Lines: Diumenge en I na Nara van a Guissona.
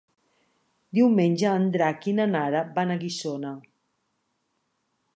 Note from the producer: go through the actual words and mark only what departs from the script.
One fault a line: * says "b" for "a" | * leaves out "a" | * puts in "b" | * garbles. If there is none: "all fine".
* puts in "Drac"